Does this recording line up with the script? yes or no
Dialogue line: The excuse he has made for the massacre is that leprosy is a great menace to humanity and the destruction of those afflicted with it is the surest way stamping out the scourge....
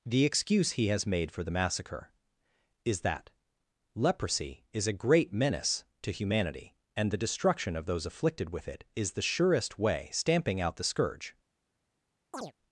yes